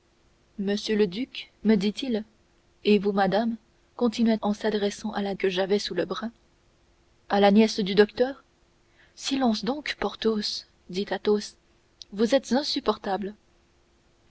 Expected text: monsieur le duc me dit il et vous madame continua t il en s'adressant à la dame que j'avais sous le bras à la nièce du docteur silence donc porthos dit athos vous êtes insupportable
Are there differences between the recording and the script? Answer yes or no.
yes